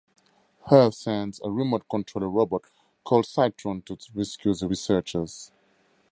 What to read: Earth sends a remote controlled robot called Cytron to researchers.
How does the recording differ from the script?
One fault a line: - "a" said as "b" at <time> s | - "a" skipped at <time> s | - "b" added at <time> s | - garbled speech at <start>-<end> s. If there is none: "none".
- "rescue the" added at 4.1 s